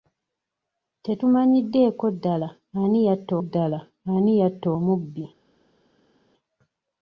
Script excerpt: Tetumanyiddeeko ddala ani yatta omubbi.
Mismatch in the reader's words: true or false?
true